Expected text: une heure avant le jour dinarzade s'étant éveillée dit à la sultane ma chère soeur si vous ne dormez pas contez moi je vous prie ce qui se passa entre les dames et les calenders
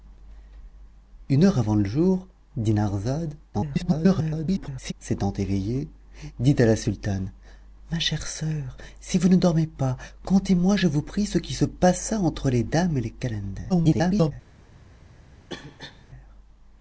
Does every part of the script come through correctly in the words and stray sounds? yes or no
no